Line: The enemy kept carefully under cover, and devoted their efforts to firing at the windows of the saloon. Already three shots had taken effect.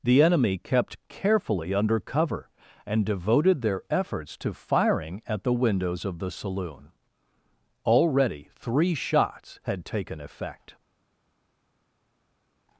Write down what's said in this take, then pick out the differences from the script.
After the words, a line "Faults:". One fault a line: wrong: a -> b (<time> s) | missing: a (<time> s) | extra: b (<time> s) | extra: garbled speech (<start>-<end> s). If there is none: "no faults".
The enemy kept carefully under cover, and devoted their efforts to firing at the windows of the saloon. Already three shots had taken effect.
Faults:
no faults